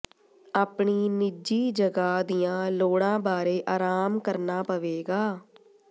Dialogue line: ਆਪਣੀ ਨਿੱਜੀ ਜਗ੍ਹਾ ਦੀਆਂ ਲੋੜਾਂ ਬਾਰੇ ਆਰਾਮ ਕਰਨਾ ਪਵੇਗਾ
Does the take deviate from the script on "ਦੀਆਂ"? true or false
false